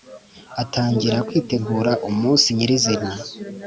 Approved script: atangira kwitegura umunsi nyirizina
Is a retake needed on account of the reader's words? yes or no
no